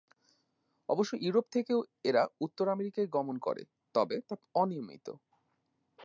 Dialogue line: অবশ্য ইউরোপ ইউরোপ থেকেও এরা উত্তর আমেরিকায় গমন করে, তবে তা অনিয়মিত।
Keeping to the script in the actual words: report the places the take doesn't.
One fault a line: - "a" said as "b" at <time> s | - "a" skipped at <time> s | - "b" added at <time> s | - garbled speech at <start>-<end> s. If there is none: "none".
- "ইউরোপ" skipped at 1.4 s